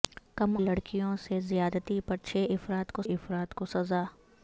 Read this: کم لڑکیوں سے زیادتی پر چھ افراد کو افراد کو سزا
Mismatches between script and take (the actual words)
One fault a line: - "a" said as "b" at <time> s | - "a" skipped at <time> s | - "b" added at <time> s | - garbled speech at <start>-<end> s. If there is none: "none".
none